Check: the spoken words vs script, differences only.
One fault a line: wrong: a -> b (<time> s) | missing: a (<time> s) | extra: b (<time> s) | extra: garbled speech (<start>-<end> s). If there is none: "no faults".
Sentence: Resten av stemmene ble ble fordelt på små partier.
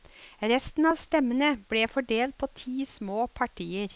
missing: ble (1.9 s)
extra: ti (2.6 s)